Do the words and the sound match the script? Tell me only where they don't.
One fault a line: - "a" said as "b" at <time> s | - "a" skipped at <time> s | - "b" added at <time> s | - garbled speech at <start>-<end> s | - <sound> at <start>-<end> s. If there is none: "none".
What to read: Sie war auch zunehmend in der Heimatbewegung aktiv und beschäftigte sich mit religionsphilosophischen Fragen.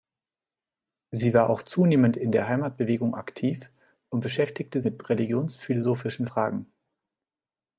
- "sich" skipped at 4.8 s